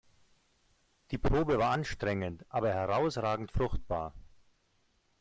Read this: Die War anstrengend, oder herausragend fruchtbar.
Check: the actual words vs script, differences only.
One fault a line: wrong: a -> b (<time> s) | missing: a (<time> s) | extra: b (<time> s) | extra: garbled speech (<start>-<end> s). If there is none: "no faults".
extra: Probe (1.2 s)
wrong: oder -> aber (2.5 s)